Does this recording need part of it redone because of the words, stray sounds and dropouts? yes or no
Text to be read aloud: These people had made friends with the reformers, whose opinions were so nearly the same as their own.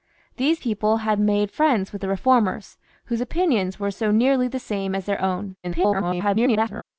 yes